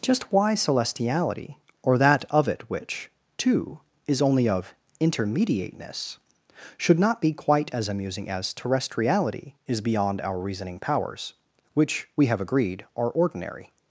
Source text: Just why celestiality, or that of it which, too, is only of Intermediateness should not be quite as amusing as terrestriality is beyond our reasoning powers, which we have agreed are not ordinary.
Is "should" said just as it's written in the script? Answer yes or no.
yes